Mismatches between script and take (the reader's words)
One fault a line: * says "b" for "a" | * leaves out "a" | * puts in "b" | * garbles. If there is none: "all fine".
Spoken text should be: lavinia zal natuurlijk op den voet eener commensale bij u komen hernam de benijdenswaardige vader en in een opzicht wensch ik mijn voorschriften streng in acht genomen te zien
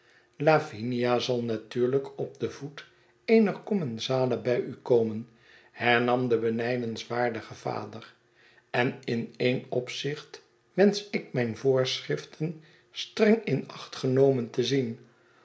all fine